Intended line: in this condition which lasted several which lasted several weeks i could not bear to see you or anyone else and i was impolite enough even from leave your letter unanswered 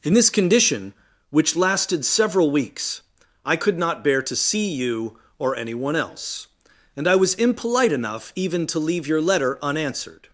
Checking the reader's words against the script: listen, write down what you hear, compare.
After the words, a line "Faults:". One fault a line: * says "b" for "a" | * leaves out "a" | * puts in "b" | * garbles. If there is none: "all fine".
in this condition which lasted several weeks i could not bear to see you or anyone else and i was impolite enough even to leave your letter unanswered
Faults:
* leaves out "which lasted several"
* says "to" for "from"